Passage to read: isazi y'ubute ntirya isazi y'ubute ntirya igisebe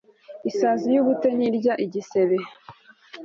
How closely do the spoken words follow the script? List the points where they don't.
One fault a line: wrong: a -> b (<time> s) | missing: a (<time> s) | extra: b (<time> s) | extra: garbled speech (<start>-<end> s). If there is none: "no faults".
missing: isazi y'ubute ntirya (1.7 s)